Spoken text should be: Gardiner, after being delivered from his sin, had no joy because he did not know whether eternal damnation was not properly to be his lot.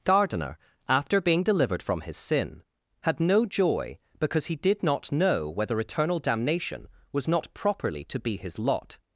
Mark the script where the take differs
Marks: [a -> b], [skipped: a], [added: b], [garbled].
Gardiner, after being delivered from his sin, had no joy because he did not know whether eternal damnation was not properly to be his lot.